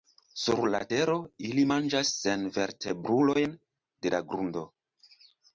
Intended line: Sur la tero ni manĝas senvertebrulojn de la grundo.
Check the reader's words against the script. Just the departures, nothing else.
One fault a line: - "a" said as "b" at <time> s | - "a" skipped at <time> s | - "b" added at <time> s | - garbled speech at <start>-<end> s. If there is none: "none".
- "ni" said as "ili" at 1.5 s